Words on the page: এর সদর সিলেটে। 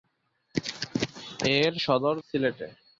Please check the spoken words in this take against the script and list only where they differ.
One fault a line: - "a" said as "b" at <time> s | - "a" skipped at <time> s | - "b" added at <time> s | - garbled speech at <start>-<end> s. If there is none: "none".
none